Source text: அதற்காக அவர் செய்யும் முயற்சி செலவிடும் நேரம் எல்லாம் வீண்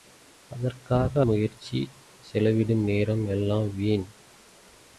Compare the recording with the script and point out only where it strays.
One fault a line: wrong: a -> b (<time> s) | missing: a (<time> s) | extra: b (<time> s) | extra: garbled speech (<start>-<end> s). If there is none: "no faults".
missing: அவர் செய்யும் (1.2 s)